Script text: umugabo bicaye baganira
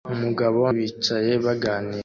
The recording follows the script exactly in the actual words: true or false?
true